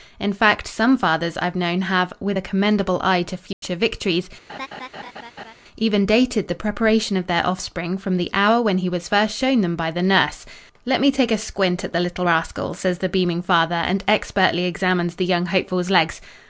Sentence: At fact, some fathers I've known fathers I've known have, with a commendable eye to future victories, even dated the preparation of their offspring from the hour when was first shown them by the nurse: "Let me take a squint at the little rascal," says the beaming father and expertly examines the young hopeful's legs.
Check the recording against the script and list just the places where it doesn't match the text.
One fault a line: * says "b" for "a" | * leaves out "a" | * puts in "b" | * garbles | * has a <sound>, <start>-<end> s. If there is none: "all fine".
* says "In" for "At"
* leaves out "fathers I've known"
* has a dropout, 3.5-3.6 s
* has a laugh, 4.5-5.5 s
* puts in "he"